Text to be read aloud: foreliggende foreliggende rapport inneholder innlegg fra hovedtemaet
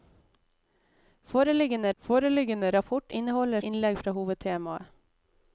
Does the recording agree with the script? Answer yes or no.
yes